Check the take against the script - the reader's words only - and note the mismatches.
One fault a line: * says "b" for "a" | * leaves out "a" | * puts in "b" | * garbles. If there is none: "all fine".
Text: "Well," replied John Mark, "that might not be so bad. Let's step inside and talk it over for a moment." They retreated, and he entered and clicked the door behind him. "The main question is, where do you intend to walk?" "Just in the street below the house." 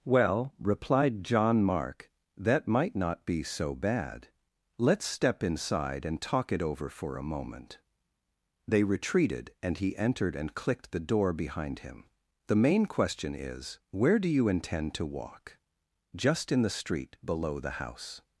all fine